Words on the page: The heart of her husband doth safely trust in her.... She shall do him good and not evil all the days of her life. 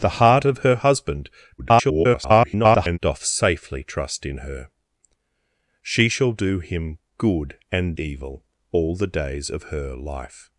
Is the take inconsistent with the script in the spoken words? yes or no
yes